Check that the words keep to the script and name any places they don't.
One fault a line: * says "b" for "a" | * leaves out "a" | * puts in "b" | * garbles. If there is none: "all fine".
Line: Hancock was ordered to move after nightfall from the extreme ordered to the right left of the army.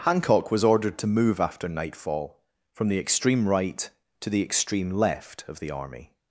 * says "right" for "ordered"
* says "extreme" for "right"